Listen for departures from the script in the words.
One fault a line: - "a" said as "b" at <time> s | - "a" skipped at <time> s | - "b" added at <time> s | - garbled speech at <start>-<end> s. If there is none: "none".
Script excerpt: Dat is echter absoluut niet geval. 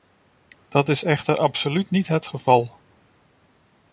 - "het" added at 2.1 s